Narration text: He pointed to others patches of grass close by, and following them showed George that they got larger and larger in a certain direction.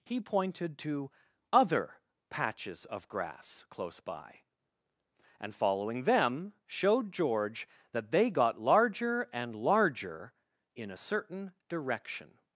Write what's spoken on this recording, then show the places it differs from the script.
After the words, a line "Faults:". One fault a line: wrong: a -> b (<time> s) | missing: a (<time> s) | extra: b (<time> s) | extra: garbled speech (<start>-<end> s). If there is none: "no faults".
He pointed to other patches of grass close by, and following them showed George that they got larger and larger in a certain direction.
Faults:
wrong: others -> other (1.5 s)